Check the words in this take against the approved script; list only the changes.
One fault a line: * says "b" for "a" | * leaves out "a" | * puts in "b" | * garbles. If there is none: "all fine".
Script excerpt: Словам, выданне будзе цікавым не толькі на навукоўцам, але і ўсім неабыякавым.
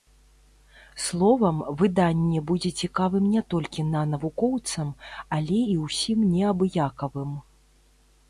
all fine